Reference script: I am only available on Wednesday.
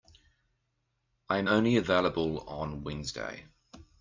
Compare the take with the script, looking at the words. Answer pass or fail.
pass